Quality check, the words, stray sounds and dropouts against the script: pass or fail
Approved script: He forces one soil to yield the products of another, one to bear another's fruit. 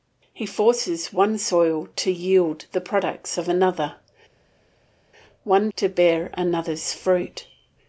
pass